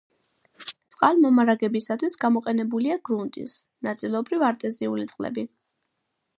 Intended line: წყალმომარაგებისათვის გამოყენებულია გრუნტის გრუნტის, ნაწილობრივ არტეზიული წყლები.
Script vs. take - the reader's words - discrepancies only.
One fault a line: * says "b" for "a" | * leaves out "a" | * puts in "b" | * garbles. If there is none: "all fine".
* leaves out "გრუნტის"